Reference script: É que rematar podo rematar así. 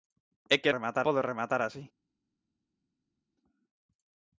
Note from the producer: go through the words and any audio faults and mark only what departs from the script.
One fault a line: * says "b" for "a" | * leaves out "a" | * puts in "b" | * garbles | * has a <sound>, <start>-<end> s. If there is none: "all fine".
all fine